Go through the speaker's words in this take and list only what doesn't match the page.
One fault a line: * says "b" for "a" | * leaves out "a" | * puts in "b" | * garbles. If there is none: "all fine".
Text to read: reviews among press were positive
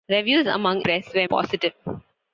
all fine